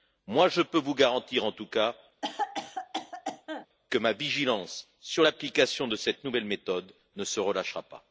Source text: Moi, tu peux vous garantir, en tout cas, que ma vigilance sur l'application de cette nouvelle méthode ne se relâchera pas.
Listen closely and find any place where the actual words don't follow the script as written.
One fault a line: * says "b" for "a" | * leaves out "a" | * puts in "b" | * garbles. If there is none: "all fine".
* says "je" for "tu"